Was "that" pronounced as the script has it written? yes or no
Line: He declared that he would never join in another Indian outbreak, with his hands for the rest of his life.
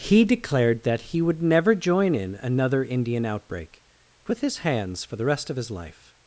yes